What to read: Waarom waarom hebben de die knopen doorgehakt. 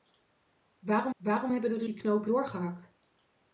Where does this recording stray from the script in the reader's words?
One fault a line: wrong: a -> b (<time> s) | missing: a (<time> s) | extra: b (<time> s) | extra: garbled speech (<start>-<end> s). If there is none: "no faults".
no faults